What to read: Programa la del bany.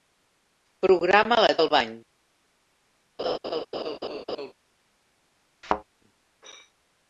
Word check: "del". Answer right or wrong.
right